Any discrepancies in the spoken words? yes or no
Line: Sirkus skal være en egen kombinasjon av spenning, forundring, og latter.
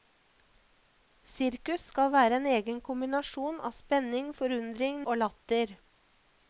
no